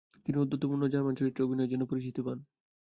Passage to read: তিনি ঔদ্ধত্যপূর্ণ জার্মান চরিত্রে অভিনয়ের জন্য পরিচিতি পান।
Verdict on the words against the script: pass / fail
pass